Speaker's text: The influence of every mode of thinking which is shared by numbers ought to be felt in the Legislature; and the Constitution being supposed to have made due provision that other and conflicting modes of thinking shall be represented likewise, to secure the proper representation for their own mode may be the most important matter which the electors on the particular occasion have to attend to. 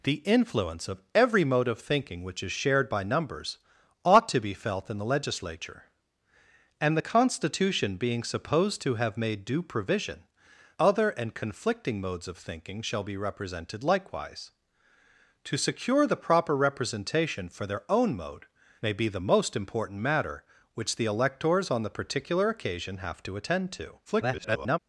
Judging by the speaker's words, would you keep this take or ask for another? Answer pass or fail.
fail